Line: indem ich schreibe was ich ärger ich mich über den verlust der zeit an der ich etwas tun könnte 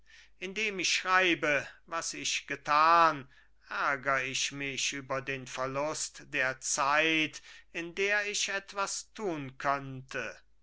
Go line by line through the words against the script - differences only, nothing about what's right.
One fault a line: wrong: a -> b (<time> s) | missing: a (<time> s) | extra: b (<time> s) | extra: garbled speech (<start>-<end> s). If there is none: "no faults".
extra: getan (2.5 s)
wrong: an -> in (7.7 s)